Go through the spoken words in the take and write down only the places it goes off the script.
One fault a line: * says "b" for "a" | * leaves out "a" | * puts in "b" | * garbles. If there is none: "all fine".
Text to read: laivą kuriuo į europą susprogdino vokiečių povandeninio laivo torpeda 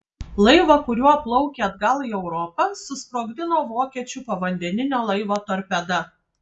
* puts in "plaukė atgal"